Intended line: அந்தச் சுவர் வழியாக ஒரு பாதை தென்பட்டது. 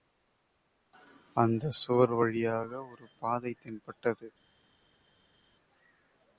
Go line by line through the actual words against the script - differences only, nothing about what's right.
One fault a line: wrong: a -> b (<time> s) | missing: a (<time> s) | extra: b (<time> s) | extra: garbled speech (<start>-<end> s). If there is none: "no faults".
no faults